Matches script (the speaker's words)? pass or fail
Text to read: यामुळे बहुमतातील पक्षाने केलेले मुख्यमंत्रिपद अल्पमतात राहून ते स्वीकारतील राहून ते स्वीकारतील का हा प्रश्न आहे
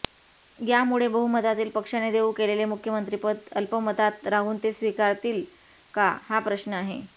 fail